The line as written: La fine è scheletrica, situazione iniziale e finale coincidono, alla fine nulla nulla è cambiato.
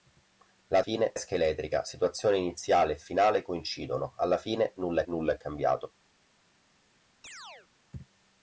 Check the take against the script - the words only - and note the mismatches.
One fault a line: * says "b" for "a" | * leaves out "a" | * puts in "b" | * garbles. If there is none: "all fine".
all fine